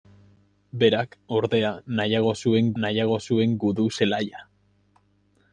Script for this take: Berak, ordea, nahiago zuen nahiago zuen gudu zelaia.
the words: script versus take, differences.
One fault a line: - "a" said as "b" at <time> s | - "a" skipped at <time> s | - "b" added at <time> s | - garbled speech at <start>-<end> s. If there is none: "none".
none